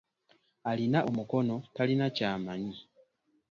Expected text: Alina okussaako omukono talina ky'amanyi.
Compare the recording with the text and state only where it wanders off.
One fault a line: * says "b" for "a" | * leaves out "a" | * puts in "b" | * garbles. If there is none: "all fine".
* leaves out "okussaako"